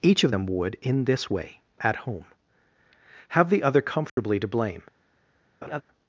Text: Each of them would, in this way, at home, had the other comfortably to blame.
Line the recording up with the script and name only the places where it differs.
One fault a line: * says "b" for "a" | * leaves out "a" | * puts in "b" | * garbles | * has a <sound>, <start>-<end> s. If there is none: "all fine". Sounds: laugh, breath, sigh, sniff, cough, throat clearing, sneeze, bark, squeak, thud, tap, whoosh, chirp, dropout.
* says "have" for "had"
* has a dropout, 4.1-4.2 s
* has a laugh, 5.6-5.8 s